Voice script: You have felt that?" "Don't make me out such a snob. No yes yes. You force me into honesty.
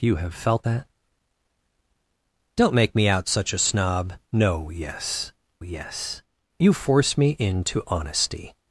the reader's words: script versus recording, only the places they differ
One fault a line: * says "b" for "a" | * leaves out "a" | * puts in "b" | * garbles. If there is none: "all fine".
all fine